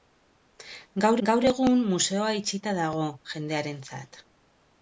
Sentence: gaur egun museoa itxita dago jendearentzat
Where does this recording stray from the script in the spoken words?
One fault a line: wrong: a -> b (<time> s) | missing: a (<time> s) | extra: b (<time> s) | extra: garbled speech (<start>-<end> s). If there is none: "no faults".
extra: gaur (1.3 s)